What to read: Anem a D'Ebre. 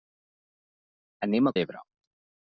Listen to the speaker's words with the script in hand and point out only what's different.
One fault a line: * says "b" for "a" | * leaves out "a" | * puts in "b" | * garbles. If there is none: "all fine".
all fine